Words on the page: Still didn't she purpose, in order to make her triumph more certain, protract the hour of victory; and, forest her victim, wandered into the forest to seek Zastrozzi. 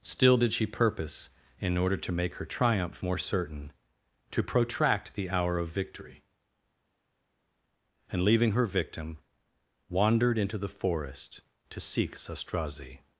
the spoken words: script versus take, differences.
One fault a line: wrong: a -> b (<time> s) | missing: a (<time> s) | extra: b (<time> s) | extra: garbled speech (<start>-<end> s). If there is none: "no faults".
wrong: didn't -> did (0.4 s)
extra: to (4.3 s)
wrong: forest -> leaving (8.2 s)